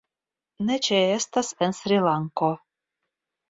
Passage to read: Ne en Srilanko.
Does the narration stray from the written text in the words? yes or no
yes